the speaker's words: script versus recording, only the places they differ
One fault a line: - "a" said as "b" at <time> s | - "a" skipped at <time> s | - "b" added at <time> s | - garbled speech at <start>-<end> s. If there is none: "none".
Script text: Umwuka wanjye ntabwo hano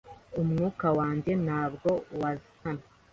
none